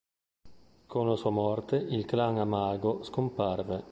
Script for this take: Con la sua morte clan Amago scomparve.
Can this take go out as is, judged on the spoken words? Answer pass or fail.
fail